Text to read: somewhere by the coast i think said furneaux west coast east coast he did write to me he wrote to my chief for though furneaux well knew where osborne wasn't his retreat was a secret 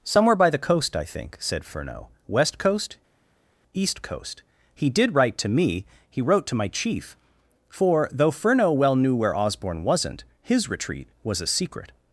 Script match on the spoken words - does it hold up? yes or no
yes